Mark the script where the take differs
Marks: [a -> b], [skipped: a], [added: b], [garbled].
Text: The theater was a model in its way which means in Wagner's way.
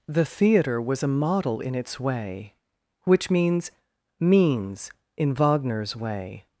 The theater was a model in its way which means [added: means] in Wagner's way.